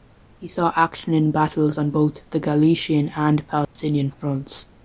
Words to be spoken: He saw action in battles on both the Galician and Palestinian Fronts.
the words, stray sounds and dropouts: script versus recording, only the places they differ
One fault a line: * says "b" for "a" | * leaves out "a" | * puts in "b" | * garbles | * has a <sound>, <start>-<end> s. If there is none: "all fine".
* has a dropout, 3.6-3.8 s